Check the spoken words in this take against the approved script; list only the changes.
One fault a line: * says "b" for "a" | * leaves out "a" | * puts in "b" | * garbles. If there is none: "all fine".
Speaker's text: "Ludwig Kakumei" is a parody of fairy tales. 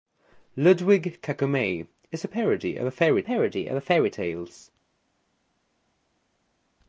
* puts in "parody of fairy"